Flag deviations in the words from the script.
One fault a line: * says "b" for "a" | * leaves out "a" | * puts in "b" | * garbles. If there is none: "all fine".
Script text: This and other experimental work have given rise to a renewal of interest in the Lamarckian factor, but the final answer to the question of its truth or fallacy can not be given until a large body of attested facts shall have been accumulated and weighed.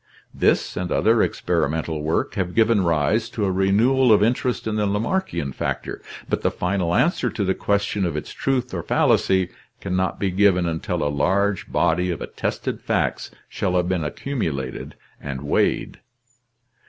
all fine